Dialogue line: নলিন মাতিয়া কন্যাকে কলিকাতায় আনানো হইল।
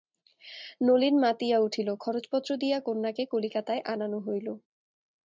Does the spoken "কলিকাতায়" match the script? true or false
true